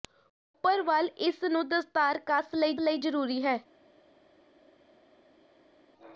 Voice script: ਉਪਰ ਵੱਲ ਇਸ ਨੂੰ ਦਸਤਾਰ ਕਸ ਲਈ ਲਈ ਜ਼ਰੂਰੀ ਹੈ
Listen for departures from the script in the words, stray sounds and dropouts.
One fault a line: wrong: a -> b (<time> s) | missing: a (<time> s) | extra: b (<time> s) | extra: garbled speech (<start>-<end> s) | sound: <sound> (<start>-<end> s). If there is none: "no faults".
no faults